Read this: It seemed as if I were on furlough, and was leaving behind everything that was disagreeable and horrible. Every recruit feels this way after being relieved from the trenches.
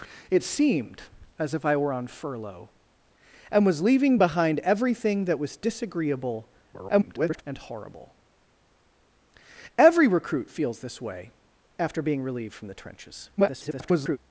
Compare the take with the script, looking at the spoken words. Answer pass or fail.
fail